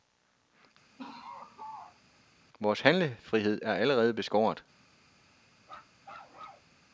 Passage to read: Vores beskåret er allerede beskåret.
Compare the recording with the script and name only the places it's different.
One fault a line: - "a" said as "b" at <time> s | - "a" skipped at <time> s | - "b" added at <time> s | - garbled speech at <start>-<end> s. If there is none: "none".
- "beskåret" said as "handlefrihed" at 2.8 s